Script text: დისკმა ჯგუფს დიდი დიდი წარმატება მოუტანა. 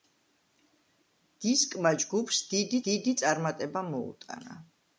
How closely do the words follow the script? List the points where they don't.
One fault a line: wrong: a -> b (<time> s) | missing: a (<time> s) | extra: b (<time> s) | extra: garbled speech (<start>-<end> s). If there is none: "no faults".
no faults